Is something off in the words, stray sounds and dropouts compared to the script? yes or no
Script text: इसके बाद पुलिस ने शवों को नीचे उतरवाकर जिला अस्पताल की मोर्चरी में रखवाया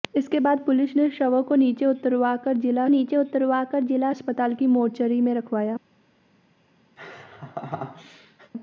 yes